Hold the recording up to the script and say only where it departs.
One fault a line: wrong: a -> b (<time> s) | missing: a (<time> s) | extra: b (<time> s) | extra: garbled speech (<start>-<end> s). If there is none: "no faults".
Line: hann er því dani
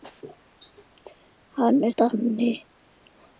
missing: því (1.9 s)